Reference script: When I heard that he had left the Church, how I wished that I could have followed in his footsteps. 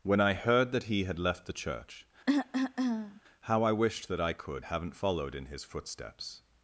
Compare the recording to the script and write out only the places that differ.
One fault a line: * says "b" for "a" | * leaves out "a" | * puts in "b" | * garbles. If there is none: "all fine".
* says "haven't" for "have"